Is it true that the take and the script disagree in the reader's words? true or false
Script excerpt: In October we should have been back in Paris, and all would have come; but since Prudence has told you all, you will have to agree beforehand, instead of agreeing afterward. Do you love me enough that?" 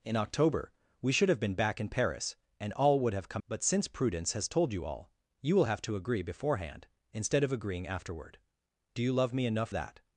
false